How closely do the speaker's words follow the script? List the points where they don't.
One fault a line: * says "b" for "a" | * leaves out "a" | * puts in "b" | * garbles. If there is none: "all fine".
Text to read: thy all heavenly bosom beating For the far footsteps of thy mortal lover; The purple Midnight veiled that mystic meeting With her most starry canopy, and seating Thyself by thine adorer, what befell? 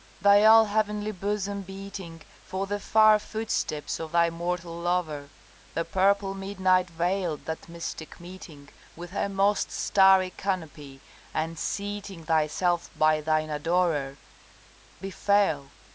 * leaves out "what"